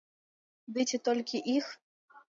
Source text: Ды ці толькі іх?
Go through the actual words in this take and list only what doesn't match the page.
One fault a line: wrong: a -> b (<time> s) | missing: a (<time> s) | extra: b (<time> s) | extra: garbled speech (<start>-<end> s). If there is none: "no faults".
no faults